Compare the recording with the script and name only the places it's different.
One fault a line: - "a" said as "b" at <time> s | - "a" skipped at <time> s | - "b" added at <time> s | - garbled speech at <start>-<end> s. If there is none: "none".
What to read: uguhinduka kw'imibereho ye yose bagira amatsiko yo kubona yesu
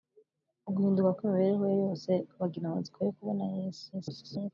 - garbled speech at 3.9-4.5 s